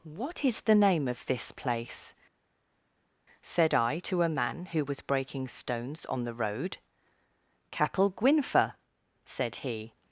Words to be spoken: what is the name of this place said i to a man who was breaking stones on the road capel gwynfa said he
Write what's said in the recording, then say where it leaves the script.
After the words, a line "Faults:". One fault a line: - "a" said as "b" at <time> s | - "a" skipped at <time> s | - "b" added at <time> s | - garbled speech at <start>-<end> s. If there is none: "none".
what is the name of this place said i to a man who was breaking stones on the road capel gwynfa said he
Faults:
none